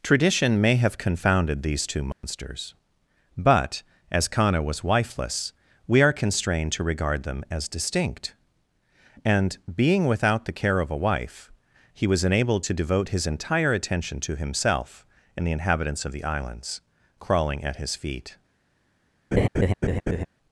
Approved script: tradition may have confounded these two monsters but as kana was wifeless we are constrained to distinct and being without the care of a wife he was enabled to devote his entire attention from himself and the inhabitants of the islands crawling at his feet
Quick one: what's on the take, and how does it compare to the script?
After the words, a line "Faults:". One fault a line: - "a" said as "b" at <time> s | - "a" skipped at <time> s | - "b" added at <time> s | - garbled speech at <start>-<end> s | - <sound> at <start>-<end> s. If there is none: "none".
tradition may have confounded these two monsters but as kana was wifeless we are constrained to regard them as distinct and being without the care of a wife he was enabled to devote his entire attention to himself and the inhabitants of the islands crawling at his feet
Faults:
- dropout at 2.1-2.2 s
- "regard them as" added at 6.8 s
- "from" said as "to" at 14.2 s
- laugh at 19.3-20.3 s